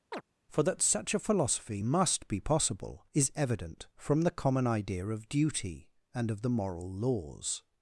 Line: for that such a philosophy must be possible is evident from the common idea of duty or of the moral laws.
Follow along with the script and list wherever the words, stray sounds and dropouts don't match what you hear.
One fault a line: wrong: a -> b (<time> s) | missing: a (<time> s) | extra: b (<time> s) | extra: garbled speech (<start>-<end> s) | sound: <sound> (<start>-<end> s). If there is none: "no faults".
sound: chirp (0.1-0.2 s)
wrong: or -> and (6.2 s)